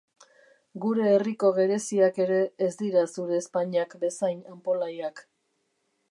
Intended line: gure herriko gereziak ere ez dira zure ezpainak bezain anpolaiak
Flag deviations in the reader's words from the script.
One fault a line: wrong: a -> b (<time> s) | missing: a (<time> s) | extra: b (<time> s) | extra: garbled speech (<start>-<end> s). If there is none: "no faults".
no faults